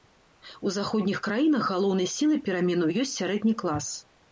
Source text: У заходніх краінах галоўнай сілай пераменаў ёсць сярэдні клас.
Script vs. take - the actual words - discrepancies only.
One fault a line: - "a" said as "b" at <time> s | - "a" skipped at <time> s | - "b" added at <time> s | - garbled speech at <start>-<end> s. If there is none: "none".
none